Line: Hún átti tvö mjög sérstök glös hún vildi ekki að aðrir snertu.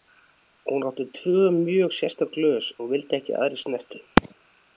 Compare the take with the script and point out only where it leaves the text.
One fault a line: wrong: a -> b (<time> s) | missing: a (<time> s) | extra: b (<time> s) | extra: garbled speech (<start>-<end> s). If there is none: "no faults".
no faults